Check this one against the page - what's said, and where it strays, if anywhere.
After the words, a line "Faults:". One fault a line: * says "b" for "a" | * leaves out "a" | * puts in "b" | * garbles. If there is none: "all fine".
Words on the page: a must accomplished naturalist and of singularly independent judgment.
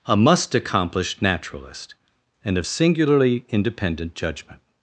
a must accomplished naturalist and of singularly independent judgment.
Faults:
all fine